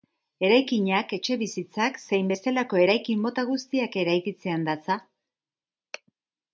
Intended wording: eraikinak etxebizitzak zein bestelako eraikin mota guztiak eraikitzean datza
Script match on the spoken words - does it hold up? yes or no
yes